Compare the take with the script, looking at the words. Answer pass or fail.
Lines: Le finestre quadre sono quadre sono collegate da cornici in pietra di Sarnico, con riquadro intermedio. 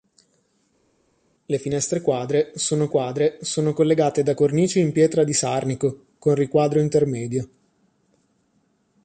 pass